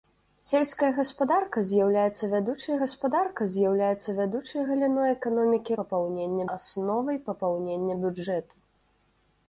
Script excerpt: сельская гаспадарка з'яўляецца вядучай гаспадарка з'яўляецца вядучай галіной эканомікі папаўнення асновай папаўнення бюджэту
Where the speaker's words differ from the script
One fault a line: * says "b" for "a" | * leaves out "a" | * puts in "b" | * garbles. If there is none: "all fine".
all fine